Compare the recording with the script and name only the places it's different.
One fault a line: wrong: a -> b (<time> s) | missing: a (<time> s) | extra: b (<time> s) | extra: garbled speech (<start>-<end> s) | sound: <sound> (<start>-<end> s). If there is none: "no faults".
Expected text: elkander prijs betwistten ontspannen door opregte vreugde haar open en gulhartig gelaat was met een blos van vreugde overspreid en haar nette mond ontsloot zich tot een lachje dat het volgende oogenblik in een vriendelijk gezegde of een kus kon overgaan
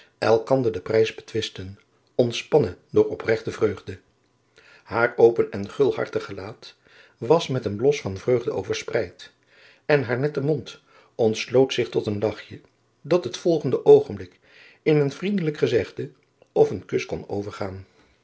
extra: den (0.7 s)